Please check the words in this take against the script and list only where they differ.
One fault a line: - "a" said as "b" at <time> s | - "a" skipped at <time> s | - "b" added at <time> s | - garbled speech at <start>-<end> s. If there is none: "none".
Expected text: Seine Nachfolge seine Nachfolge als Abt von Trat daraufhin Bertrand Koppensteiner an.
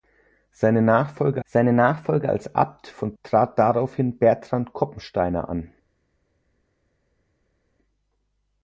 none